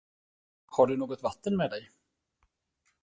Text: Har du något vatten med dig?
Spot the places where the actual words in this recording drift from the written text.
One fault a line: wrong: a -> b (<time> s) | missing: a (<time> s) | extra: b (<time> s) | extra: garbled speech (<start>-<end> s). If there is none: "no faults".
no faults